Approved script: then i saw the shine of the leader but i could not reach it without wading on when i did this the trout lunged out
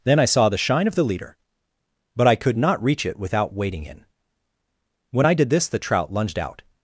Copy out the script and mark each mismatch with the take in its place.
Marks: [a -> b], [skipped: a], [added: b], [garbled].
then i saw the shine of the leader but i could not reach it without wading [on -> in] when i did this the trout lunged out